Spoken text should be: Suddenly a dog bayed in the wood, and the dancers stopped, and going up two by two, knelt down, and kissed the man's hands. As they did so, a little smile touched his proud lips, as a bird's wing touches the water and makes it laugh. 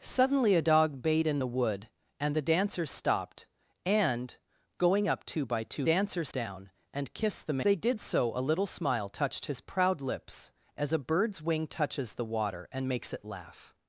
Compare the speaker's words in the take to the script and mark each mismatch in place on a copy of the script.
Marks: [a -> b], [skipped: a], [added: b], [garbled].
Suddenly a dog bayed in the wood, and the dancers stopped, and going up two by two, [knelt -> dancers] down, and kissed the [skipped: man's hands. As] they did so, a little smile touched his proud lips, as a bird's wing touches the water and makes it laugh.